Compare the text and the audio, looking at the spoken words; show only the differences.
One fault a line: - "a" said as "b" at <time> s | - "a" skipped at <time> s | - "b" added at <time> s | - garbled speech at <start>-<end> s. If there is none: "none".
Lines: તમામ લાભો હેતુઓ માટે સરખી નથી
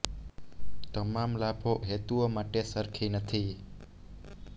none